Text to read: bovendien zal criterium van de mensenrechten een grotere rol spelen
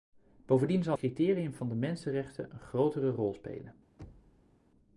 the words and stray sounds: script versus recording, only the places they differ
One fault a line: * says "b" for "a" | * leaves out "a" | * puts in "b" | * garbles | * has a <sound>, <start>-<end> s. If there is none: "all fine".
* has a thud, 4.0-4.6 s